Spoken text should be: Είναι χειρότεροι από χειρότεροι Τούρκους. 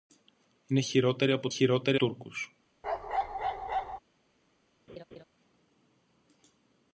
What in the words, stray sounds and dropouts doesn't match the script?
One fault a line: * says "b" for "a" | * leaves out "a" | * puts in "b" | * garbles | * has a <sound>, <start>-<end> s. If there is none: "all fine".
* has a bark, 2.8-4.0 s
* has a laugh, 4.9-5.2 s